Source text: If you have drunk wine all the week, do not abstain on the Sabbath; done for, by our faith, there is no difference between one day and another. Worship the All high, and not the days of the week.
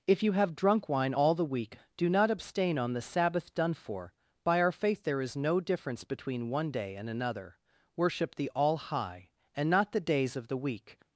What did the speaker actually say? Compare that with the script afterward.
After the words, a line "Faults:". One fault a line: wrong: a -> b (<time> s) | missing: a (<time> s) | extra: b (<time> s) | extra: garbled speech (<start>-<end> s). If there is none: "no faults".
If you have drunk wine all the week, do not abstain on the Sabbath; done for, by our faith, there is no difference between one day and another. Worship the All high, and not the days of the week.
Faults:
no faults